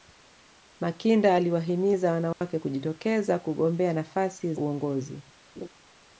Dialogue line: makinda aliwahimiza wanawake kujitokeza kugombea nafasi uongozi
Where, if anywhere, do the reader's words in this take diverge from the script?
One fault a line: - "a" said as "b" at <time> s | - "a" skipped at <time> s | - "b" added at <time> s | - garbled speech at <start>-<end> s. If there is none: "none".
none